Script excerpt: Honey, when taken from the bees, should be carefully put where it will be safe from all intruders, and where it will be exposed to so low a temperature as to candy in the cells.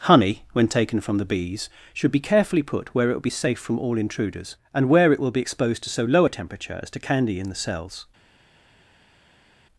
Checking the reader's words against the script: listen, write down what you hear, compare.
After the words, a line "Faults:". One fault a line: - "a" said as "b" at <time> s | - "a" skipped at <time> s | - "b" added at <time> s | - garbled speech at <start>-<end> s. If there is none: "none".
Honey, when taken from the bees, should be carefully put where it will be safe from all intruders, and where it will be exposed to so low a temperature as to candy in the cells.
Faults:
none